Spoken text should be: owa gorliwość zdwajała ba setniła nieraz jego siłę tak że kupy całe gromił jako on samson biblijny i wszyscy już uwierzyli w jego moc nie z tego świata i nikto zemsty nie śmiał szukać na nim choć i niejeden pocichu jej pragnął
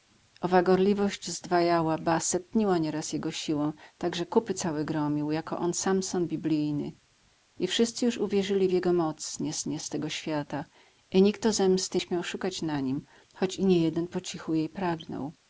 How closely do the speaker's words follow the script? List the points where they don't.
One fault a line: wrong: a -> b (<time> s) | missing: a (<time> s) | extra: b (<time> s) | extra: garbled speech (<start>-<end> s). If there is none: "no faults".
extra: nie z (9.7 s)
missing: nie (12.0 s)